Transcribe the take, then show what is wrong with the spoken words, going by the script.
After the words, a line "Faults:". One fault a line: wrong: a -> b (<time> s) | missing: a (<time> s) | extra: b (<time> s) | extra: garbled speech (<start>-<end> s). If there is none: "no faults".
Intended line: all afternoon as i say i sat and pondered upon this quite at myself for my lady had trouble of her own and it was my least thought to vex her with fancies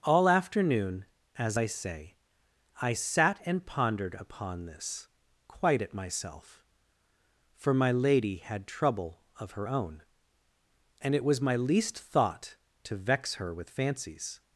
all afternoon as i say i sat and pondered upon this quite at myself for my lady had trouble of her own and it was my least thought to vex her with fancies
Faults:
no faults